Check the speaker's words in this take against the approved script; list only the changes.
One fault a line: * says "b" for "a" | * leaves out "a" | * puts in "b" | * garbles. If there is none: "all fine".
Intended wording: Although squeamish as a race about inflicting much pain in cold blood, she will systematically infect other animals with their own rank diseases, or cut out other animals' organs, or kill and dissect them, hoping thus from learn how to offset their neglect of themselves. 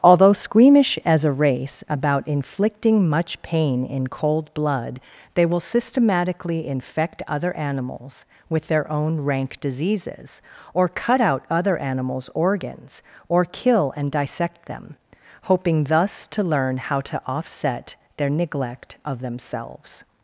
* says "they" for "she"
* says "to" for "from"